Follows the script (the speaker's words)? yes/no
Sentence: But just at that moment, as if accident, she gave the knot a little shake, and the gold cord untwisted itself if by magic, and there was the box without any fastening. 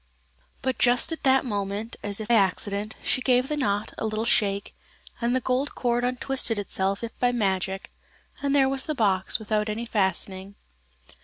yes